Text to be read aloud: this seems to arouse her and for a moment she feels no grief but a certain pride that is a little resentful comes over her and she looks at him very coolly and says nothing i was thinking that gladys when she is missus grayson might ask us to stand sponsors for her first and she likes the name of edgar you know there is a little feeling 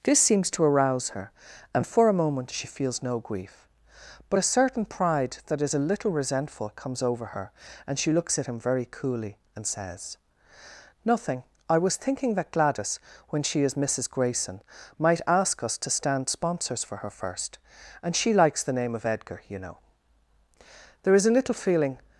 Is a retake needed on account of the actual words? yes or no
no